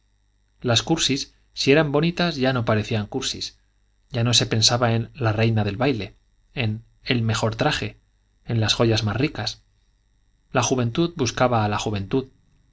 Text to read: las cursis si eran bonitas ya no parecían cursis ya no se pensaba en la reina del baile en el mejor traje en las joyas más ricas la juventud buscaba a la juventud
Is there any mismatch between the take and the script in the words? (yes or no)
no